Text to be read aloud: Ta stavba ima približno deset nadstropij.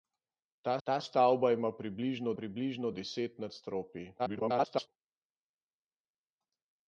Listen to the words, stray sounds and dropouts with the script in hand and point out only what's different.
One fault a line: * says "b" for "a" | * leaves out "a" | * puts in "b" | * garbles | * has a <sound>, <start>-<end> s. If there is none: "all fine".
* puts in "ta"
* puts in "približno"
* garbles